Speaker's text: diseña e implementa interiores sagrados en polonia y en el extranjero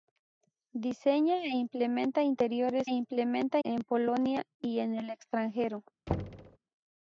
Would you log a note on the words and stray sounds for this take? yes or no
yes